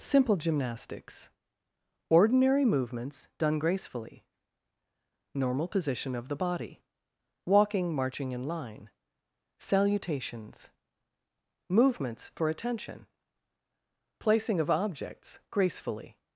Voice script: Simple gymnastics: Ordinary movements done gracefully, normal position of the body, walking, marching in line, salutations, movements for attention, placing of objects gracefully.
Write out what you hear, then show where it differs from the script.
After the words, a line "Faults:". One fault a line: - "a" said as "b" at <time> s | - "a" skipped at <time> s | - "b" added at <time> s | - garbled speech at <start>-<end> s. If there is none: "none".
Simple gymnastics: Ordinary movements done gracefully, normal position of the body, walking, marching in line, salutations, movements for attention, placing of objects gracefully.
Faults:
none